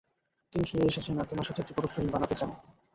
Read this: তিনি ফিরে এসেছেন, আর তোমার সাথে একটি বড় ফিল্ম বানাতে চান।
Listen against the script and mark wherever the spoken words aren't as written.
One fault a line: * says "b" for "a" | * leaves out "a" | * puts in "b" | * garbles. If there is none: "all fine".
all fine